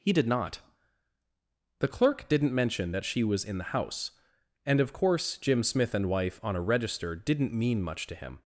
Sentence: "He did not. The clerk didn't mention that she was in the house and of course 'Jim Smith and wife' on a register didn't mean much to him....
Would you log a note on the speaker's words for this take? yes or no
no